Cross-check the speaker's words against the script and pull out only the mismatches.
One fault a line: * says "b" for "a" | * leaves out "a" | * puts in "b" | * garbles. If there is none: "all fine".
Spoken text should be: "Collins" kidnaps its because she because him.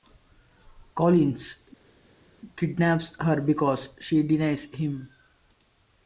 * says "her" for "its"
* says "denies" for "because"